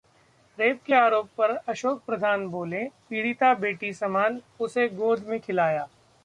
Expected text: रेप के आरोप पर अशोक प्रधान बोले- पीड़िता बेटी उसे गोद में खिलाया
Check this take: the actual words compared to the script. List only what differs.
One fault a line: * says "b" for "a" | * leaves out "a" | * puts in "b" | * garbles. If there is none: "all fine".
* puts in "समान"